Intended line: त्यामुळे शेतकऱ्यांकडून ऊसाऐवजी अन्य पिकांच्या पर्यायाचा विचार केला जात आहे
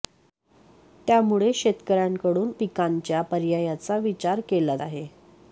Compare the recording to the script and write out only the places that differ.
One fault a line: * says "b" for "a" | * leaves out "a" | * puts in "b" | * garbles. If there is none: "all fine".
* leaves out "ऊसाऐवजी अन्य"
* leaves out "जात"